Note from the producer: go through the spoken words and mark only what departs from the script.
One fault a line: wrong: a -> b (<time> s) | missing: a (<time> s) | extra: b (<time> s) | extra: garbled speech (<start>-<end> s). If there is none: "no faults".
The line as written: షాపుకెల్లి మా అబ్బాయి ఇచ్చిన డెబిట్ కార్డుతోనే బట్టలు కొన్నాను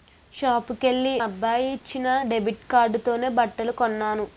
missing: మా (1.1 s)